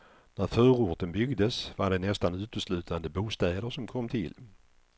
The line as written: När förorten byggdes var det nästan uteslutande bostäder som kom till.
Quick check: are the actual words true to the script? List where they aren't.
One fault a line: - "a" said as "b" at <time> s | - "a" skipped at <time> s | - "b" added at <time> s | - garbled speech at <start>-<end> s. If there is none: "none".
none